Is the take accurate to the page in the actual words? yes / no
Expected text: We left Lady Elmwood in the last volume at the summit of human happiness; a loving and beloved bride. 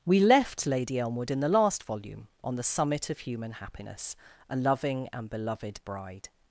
no